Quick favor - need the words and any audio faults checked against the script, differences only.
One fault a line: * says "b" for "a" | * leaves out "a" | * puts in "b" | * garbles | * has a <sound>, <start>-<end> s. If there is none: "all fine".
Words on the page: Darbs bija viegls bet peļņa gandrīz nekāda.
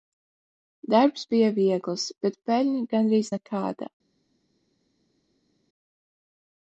all fine